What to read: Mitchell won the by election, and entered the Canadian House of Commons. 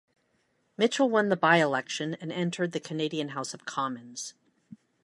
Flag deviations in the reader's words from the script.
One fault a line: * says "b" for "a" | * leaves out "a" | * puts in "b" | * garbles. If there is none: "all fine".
all fine